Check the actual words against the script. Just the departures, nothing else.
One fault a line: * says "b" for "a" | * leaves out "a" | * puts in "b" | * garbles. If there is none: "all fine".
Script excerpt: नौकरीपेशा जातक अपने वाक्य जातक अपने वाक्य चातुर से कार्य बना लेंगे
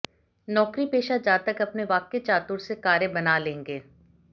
* leaves out "जातक अपने वाक्य"